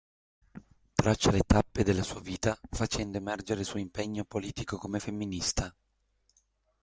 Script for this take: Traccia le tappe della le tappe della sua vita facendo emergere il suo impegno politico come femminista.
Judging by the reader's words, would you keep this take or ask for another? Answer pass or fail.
fail